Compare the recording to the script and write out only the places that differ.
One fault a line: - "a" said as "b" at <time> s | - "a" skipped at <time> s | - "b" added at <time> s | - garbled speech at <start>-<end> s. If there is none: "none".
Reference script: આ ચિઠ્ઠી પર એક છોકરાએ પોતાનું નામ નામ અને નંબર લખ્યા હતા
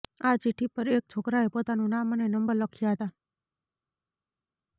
- "નામ" skipped at 2.1 s